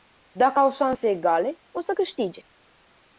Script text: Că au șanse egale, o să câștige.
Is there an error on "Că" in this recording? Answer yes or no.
yes